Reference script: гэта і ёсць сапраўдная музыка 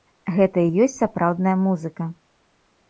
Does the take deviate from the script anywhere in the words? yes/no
no